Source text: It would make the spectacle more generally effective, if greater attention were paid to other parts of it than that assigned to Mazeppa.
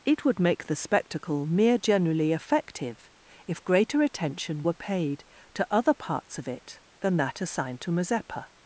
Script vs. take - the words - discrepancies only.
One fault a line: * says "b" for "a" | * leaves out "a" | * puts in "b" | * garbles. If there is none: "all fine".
* says "mere" for "more"